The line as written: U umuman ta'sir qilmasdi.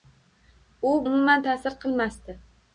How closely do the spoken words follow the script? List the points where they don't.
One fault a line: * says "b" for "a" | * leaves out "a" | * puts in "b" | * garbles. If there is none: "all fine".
all fine